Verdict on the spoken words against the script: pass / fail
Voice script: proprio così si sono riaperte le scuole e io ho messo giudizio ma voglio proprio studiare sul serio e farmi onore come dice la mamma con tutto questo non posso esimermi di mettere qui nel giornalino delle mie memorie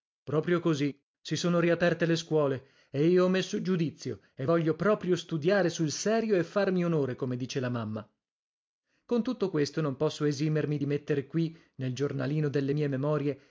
fail